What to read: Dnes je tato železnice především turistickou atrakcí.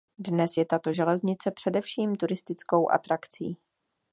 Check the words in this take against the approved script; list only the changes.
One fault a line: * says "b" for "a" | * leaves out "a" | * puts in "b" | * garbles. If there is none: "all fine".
all fine